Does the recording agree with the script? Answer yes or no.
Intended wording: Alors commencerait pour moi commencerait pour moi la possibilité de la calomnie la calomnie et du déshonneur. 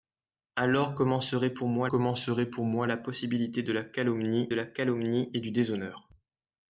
yes